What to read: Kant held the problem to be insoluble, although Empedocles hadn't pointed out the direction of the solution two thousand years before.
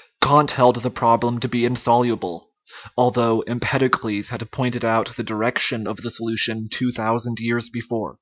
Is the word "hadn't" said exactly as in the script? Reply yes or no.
no